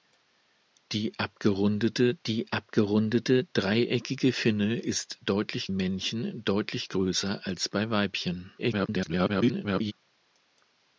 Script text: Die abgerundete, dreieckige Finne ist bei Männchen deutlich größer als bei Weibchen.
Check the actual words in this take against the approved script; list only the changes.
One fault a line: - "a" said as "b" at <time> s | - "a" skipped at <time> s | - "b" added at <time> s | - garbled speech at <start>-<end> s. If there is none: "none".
- "die abgerundete" added at 2.3 s
- "bei" said as "deutlich" at 5.2 s
- garbled speech at 8.6-9.9 s